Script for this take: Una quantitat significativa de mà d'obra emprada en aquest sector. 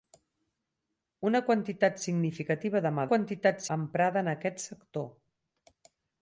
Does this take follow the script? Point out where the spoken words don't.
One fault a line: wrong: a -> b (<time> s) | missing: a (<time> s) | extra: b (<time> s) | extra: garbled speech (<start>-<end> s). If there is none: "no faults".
wrong: d'obra -> quantitat (3.1 s)